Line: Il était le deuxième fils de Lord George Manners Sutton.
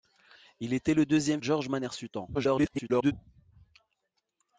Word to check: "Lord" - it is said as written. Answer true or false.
false